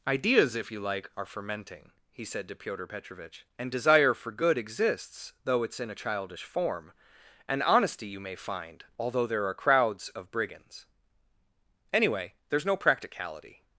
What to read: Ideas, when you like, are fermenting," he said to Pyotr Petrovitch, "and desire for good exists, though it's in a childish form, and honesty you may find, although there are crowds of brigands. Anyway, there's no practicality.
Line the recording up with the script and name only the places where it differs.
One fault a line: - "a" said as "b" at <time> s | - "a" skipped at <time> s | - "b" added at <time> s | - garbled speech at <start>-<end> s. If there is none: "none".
- "when" said as "if" at 0.6 s